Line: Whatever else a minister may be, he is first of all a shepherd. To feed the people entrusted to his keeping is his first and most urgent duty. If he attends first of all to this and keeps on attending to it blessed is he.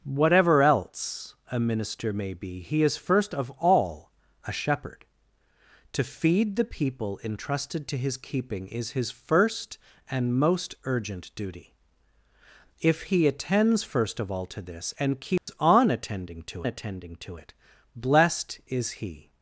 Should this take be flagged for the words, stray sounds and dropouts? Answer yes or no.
yes